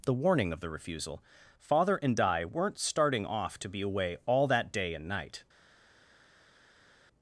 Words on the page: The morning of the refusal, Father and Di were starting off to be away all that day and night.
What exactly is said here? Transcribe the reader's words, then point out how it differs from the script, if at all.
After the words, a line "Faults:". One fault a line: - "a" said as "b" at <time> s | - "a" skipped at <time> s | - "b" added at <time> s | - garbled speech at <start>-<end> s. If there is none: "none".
The warning of the refusal, Father and Di weren't starting off to be away all that day and night.
Faults:
- "morning" said as "warning" at 0.1 s
- "were" said as "weren't" at 2.4 s